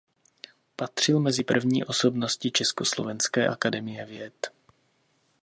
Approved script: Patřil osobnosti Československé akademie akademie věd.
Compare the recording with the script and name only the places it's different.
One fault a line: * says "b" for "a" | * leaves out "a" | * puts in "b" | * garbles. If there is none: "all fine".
* puts in "mezi první"
* leaves out "akademie"